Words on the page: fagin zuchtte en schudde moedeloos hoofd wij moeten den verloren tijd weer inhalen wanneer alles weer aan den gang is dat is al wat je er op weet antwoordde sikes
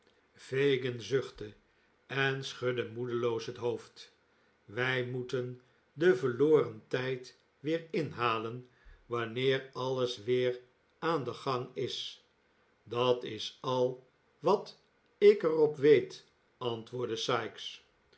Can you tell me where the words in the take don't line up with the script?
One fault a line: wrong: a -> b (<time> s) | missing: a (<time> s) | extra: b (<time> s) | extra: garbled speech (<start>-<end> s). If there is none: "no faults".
extra: het (3.5 s)
wrong: je -> ik (15.2 s)